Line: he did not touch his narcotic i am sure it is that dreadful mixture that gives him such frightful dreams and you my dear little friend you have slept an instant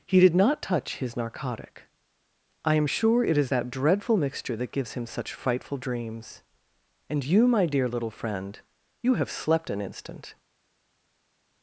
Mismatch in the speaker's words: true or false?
false